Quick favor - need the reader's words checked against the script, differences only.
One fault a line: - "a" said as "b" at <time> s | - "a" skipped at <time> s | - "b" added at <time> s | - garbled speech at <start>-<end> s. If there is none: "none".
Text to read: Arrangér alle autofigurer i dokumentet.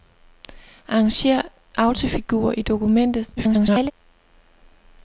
- "alle" skipped at 1.4 s
- garbled speech at 3.4-3.9 s